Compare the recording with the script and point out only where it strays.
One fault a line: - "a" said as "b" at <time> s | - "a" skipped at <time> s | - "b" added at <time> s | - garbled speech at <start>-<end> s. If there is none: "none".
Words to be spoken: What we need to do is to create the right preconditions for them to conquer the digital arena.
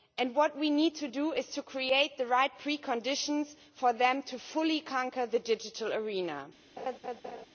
- "fully" added at 4.4 s